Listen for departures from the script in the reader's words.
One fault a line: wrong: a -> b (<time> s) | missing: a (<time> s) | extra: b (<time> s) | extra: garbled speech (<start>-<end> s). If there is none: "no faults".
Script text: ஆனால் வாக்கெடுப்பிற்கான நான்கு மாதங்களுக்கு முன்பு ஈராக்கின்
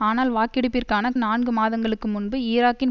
no faults